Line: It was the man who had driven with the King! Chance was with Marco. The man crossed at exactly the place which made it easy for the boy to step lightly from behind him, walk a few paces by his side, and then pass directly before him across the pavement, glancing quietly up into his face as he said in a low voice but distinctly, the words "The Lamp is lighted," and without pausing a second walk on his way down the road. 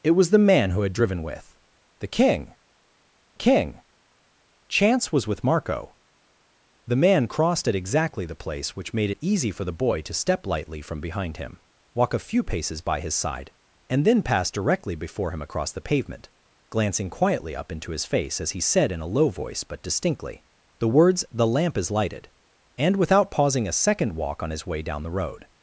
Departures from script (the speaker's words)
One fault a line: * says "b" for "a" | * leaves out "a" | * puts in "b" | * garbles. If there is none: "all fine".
* puts in "King"